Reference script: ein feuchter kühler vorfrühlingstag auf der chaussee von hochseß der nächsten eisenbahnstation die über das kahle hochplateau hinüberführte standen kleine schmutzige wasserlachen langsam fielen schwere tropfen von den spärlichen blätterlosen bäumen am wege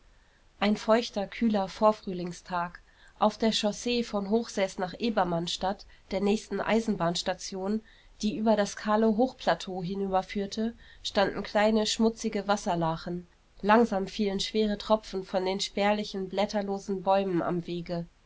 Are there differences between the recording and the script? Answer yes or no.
yes